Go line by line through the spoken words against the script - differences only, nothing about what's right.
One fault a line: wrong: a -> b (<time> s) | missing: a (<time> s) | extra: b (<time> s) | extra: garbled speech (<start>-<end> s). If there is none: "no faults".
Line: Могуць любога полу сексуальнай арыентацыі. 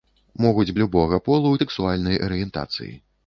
no faults